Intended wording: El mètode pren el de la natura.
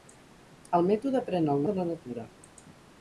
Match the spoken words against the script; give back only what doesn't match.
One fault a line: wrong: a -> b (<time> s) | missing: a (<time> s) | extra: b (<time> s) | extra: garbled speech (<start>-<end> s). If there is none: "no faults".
no faults